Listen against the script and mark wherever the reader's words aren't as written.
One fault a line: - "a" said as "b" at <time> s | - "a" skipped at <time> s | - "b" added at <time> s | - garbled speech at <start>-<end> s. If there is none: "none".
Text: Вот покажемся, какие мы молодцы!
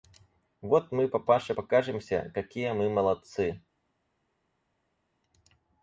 - "мы папаше" added at 0.9 s